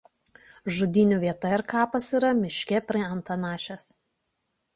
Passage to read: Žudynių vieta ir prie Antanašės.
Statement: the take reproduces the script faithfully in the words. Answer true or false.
false